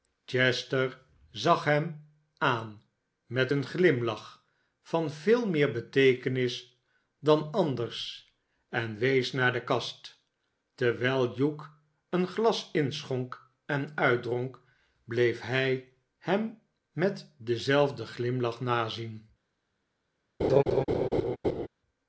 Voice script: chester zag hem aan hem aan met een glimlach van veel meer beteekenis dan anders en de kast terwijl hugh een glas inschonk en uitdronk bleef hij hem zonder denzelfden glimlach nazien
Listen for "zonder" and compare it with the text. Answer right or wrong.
wrong